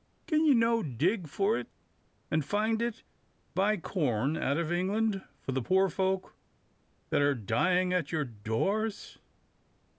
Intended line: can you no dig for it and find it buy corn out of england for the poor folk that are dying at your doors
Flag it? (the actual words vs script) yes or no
no